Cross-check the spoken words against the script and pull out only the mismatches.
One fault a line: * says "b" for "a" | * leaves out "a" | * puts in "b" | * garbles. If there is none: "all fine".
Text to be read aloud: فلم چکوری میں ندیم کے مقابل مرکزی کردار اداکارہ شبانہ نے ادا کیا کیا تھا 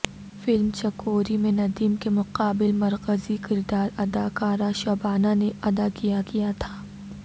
all fine